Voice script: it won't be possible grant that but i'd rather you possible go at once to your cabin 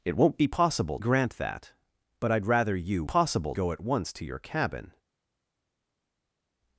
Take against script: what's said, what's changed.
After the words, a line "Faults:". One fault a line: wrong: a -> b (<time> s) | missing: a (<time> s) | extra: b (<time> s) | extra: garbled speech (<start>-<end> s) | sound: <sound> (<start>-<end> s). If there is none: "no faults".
it won't be possible grant that but i'd rather you possible go at once to your cabin
Faults:
no faults